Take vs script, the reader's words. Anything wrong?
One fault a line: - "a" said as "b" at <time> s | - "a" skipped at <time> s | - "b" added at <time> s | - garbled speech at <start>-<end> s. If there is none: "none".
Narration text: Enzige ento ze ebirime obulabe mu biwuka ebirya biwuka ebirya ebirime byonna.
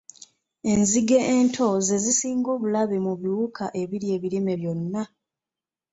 - "ebirime" said as "zisinga" at 2.0 s
- "biwuka ebirya" skipped at 4.1 s